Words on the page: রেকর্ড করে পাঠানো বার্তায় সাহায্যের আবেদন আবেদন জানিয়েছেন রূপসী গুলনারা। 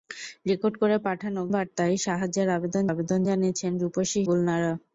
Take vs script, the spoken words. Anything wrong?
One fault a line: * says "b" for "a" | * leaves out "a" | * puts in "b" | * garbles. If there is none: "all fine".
all fine